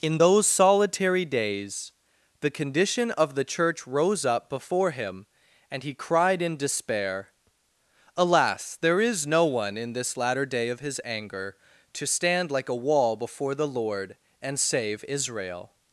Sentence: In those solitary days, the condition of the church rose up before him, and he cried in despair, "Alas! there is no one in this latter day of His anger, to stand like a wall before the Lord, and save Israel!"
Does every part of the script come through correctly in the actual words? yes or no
yes